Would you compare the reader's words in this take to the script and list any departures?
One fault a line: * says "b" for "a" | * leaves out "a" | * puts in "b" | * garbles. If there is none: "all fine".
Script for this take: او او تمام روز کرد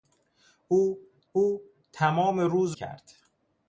all fine